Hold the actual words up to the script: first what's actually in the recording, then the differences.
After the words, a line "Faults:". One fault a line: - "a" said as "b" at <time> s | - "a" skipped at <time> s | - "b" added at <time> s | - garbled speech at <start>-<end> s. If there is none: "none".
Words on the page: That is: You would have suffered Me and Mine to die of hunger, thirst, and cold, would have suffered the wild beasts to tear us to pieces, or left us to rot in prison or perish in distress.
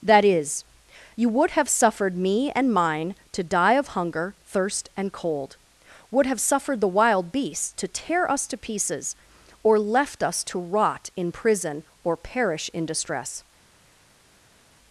That is: You would have suffered Me and Mine to die of hunger, thirst, and cold, would have suffered the wild beasts to tear us to pieces, or left us to rot in prison or perish in distress.
Faults:
none